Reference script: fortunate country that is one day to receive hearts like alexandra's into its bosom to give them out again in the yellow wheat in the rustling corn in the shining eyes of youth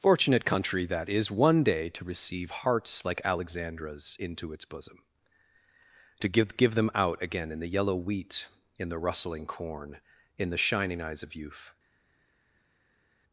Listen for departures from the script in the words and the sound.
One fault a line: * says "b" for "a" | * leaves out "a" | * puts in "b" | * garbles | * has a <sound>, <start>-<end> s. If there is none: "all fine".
* puts in "give"